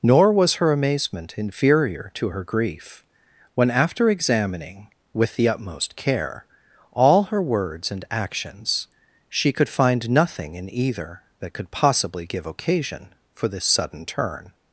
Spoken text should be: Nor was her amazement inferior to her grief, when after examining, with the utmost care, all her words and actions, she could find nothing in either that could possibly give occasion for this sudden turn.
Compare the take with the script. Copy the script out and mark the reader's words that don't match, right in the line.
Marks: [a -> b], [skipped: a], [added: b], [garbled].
Nor was her amazement inferior to her grief, when after examining, with the utmost care, all her words and actions, she could find nothing in either that could possibly give occasion for this sudden turn.